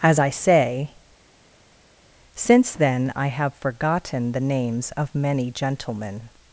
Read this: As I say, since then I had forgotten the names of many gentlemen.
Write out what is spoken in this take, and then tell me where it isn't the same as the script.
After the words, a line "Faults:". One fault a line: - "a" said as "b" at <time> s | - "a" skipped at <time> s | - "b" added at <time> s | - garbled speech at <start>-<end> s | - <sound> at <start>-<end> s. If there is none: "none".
As I say, since then I have forgotten the names of many gentlemen.
Faults:
- "had" said as "have" at 3.3 s